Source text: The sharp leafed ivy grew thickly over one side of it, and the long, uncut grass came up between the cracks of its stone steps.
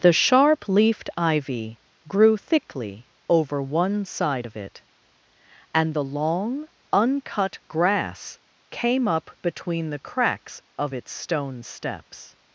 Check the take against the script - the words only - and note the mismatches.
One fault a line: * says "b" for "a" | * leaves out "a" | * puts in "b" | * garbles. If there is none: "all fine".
all fine